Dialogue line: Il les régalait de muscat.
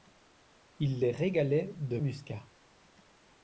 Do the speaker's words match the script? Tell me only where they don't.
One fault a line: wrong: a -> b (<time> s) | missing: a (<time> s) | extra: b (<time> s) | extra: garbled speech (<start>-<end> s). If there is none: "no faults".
no faults